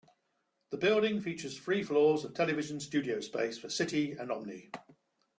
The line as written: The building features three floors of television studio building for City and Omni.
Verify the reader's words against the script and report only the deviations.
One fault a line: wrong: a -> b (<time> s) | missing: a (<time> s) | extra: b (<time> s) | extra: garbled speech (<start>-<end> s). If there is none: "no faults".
wrong: building -> space (3.2 s)